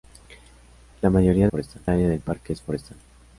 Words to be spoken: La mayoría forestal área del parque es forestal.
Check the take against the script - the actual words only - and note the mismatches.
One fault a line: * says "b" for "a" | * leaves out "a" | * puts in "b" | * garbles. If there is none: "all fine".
all fine